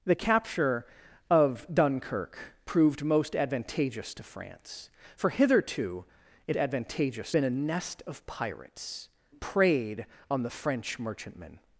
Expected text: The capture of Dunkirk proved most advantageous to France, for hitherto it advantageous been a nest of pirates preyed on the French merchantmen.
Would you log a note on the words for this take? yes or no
no